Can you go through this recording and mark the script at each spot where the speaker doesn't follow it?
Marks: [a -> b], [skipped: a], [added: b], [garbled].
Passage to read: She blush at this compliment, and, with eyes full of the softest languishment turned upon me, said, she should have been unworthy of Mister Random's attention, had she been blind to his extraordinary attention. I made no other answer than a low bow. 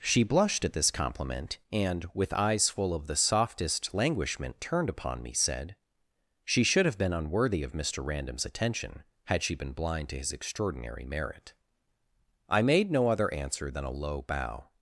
She [blush -> blushed] at this compliment, and, with eyes full of the softest languishment turned upon me, said, she should have been unworthy of Mister Random's attention, had she been blind to his extraordinary [attention. -> merit] I made no other answer than a low bow.